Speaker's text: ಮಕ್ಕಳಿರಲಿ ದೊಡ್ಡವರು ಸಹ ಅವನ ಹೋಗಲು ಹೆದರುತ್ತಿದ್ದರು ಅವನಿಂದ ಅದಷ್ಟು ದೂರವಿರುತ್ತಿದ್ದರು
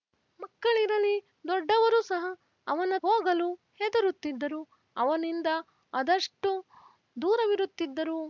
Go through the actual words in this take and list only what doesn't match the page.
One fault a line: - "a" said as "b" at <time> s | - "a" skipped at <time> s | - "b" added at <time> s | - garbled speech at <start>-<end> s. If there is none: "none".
none